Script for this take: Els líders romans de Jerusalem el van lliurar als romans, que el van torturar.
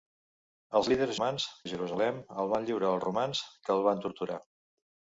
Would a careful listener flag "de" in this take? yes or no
no